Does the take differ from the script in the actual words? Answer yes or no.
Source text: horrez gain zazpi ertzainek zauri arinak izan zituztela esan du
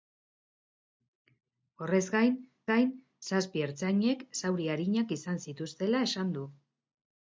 yes